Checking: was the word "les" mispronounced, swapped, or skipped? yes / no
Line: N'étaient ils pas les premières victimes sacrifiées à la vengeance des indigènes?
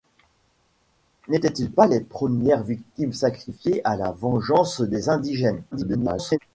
no